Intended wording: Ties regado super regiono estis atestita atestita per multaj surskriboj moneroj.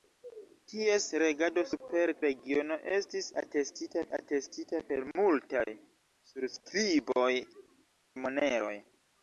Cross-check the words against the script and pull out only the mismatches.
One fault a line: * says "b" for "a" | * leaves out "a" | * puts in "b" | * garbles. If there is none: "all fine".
all fine